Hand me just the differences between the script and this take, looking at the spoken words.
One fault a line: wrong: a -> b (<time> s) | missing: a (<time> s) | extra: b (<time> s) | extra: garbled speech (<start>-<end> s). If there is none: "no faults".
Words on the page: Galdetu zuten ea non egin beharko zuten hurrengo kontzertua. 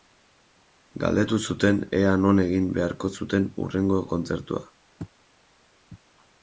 no faults